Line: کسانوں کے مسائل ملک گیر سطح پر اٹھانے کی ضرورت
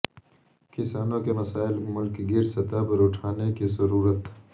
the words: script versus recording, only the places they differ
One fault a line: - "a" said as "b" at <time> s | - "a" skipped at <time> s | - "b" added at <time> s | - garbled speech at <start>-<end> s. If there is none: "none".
none